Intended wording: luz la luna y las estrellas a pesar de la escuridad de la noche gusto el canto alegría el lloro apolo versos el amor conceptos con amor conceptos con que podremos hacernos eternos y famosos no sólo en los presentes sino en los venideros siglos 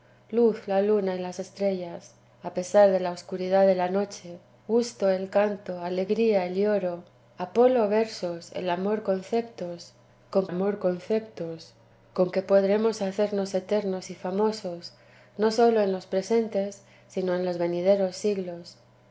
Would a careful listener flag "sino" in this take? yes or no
no